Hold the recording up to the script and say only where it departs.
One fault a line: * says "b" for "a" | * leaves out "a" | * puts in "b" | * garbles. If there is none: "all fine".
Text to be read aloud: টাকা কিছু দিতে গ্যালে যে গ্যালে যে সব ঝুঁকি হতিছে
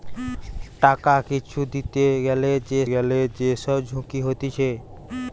all fine